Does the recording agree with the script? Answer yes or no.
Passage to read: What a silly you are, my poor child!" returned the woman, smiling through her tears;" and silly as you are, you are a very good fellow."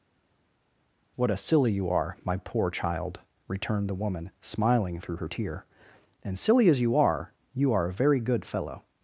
no